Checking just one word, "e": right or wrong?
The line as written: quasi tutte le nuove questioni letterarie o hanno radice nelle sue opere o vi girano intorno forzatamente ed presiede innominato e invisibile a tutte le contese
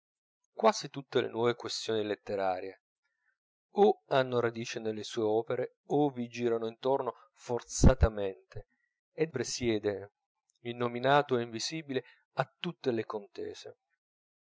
right